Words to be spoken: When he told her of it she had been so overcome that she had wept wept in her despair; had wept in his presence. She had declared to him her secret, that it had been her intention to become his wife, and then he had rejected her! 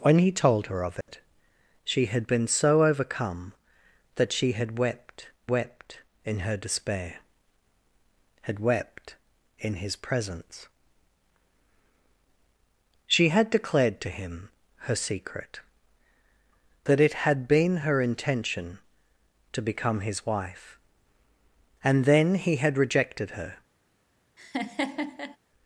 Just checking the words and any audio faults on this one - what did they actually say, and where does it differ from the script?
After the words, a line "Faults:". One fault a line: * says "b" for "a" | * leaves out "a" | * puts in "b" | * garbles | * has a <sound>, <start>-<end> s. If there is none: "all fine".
When he told her of it she had been so overcome that she had wept wept in her despair; had wept in his presence. She had declared to him her secret, that it had been her intention to become his wife, and then he had rejected her!
Faults:
* has a dropout, 1.0-1.1 s
* has a laugh, 24.4-25.4 s